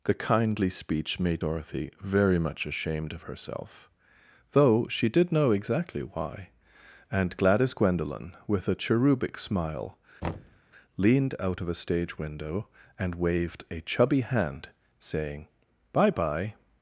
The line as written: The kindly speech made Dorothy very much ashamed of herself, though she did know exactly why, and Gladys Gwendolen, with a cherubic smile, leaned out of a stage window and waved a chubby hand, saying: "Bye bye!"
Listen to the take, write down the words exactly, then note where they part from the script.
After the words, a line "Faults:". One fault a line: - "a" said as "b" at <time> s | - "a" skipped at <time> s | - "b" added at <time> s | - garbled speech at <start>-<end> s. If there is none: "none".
The kindly speech made Dorothy very much ashamed of herself, though she did know exactly why, and Gladys Gwendolen, with a cherubic smile, leaned out of a stage window and waved a chubby hand, saying: "Bye bye!"
Faults:
none